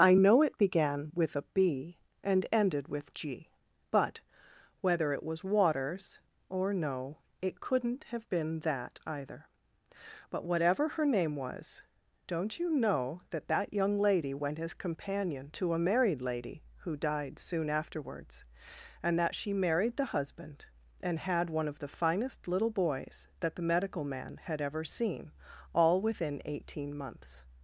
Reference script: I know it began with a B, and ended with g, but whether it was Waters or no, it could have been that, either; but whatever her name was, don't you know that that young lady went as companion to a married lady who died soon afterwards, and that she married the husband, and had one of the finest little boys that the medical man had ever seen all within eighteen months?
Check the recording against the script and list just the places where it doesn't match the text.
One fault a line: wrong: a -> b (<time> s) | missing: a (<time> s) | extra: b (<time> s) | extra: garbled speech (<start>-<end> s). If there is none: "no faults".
wrong: could -> couldn't (7.6 s)